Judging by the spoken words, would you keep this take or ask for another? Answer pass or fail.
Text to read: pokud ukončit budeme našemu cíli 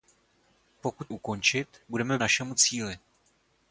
pass